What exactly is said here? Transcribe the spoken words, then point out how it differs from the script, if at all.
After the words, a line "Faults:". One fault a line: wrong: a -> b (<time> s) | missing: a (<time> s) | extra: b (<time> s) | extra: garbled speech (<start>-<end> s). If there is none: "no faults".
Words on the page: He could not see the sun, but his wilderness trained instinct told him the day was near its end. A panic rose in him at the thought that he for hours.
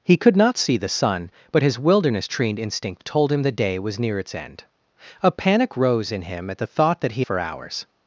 He could not see the sun, but his wilderness trained instinct told him the day was near its end. A panic rose in him at the thought that he for hours.
Faults:
no faults